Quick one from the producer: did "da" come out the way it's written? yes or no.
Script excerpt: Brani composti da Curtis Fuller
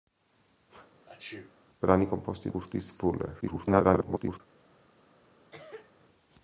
no